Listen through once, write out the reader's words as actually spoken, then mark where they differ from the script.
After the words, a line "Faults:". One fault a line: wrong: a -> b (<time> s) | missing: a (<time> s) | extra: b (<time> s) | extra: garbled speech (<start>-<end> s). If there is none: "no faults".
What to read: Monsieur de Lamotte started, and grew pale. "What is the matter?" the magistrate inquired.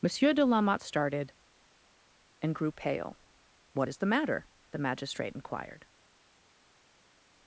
Monsieur de Lamotte started, and grew pale. "What is the matter?" the magistrate inquired.
Faults:
no faults